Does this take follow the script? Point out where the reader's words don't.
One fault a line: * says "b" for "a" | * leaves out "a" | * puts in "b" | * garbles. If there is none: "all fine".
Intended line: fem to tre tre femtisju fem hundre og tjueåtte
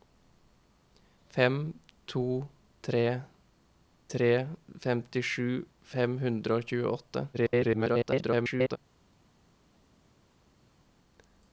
* garbles